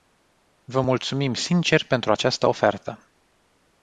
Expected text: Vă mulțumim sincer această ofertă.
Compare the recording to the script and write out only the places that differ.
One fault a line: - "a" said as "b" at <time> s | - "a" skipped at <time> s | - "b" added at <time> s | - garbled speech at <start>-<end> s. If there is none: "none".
- "pentru" added at 1.9 s